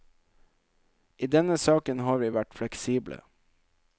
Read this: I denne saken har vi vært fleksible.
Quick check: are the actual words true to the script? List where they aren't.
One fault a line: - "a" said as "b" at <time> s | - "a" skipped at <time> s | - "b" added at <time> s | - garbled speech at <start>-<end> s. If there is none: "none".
none